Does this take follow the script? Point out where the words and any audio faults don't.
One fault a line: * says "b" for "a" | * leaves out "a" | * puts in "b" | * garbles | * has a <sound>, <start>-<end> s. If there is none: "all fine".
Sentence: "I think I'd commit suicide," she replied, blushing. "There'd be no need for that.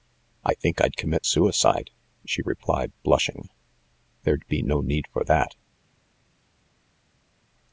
all fine